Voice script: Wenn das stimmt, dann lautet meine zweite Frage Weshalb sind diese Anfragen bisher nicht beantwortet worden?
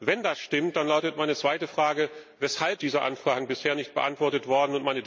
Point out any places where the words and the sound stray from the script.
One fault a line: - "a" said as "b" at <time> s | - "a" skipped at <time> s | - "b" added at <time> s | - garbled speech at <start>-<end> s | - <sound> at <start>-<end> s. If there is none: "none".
- "sind" skipped at 2.8 s